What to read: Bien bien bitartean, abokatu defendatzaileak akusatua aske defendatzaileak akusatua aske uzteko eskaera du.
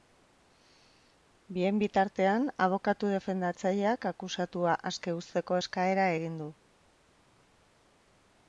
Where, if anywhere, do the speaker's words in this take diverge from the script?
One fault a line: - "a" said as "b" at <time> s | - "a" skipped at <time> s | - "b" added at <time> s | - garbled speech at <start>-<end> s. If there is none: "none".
- "bien" skipped at 1.8 s
- "defendatzaileak akusatua aske" skipped at 5.2 s
- "egin" added at 6.2 s